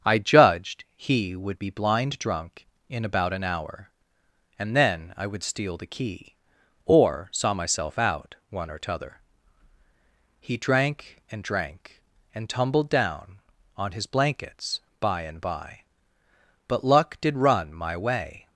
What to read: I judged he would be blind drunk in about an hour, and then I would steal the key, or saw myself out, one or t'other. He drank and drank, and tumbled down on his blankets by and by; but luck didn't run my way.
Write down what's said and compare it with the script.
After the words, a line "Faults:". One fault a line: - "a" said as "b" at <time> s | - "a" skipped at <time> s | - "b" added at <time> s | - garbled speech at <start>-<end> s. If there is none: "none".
I judged he would be blind drunk in about an hour, and then I would steal the key, or saw myself out, one or t'other. He drank and drank, and tumbled down on his blankets by and by; but luck did run my way.
Faults:
- "didn't" said as "did" at 17.2 s